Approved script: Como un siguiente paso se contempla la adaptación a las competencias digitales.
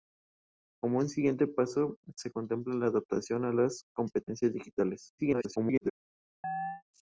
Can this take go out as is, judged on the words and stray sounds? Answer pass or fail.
fail